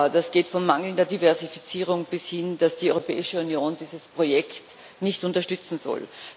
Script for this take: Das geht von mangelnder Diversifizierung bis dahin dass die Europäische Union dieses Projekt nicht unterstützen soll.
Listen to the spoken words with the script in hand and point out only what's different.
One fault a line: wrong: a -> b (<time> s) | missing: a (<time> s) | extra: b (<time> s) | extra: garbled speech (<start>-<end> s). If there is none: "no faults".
no faults